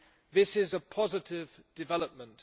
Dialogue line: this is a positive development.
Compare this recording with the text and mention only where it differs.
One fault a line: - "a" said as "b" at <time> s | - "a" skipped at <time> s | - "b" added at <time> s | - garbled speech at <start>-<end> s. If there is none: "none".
none